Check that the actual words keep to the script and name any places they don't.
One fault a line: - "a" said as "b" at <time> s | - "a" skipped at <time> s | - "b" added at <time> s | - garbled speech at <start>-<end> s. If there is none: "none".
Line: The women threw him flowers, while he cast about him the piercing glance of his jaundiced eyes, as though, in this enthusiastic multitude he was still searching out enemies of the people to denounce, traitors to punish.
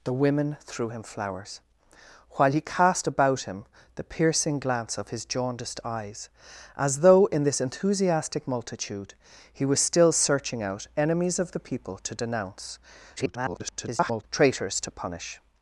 - garbled speech at 13.2-14.2 s